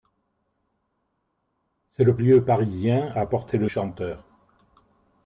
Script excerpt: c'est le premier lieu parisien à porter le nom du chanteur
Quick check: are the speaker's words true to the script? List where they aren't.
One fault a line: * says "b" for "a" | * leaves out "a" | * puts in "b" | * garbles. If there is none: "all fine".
* leaves out "premier"
* leaves out "nom du"